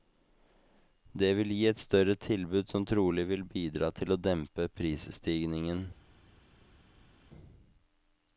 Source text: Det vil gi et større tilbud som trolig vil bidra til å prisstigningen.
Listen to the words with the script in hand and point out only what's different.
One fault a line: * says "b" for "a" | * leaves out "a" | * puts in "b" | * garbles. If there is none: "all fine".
* puts in "dempe"